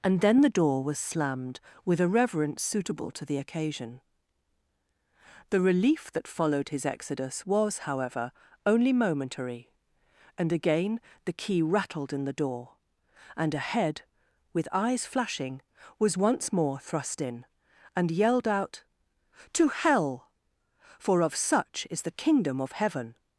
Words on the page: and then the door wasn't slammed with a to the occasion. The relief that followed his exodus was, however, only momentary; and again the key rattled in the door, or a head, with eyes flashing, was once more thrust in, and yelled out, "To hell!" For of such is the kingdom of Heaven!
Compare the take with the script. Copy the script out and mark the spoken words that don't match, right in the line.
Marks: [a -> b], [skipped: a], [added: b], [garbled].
and then the door [wasn't -> was] slammed with a [added: reverence suitable] to the occasion. The relief that followed his exodus was, however, only momentary; and again the key rattled in the door, [or -> and] a head, with eyes flashing, was once more thrust in, and yelled out, "To hell!" For of such is the kingdom of Heaven!